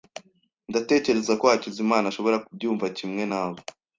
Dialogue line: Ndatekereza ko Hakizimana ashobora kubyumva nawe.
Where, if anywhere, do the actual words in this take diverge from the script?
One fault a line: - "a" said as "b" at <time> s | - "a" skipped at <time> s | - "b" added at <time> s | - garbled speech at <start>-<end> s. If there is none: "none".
- "kimwe" added at 3.0 s